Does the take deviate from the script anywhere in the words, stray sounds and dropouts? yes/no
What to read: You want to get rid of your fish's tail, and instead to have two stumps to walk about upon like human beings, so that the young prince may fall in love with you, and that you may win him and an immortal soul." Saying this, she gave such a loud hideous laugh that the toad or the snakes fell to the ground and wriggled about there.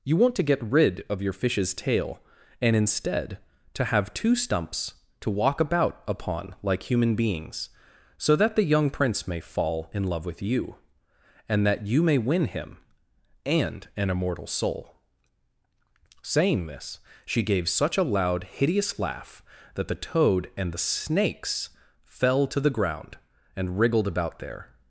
yes